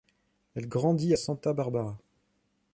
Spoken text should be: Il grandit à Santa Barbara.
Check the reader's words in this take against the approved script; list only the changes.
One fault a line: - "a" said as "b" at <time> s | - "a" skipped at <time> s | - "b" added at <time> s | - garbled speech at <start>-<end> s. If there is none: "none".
- "Il" said as "Elle" at 0.6 s